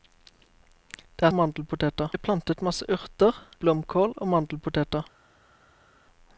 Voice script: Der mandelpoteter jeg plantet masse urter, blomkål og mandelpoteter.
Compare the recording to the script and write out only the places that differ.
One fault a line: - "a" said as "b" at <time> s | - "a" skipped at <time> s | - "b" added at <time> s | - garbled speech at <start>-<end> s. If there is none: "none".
none